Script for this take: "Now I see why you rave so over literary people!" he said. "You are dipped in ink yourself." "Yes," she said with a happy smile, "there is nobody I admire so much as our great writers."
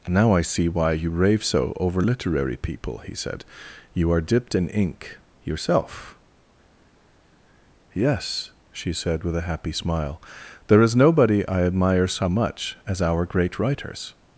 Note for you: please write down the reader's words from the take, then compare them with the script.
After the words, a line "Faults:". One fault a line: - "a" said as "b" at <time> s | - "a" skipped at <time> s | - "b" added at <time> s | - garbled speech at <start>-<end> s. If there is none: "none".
"Now I see why you rave so over literary people!" he said. "You are dipped in ink yourself." "Yes," she said with a happy smile, "there is nobody I admire so much as our great writers."
Faults:
none